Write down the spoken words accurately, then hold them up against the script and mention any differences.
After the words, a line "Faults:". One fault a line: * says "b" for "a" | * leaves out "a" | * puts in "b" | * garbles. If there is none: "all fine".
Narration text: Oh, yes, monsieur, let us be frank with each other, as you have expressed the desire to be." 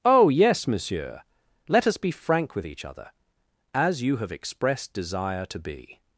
Oh, yes, monsieur, let us be frank with each other, as you have expressed desire to be."
Faults:
* leaves out "the"